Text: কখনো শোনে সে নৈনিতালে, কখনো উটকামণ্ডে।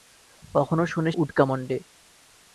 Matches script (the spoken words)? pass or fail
fail